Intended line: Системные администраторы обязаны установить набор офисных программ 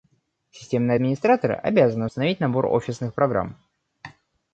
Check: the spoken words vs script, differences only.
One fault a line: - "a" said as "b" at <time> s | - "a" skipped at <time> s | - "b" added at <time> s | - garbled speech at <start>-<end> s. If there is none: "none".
none